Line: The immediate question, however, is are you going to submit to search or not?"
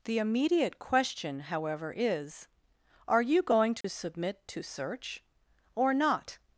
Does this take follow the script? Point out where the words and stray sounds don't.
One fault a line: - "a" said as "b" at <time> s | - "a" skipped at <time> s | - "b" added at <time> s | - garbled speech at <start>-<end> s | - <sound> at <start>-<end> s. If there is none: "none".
- dropout at 3.8-3.8 s